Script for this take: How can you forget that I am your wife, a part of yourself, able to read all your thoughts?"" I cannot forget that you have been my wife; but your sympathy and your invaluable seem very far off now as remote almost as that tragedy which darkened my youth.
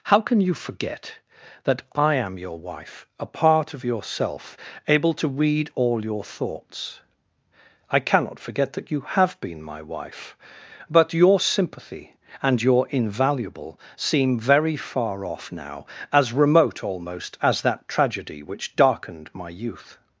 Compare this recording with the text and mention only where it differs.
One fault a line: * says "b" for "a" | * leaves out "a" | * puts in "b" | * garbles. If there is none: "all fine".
all fine